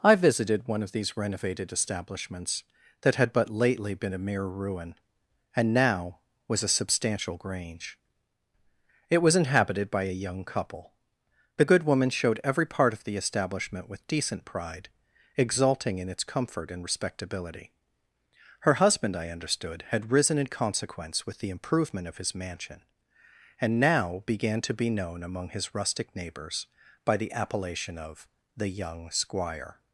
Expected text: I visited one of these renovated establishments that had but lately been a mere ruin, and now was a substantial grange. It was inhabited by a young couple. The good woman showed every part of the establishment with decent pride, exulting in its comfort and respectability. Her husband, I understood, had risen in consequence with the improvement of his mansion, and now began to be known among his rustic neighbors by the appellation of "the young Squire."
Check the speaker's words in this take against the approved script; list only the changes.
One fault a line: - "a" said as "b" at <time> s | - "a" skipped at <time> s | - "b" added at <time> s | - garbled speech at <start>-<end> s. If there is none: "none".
none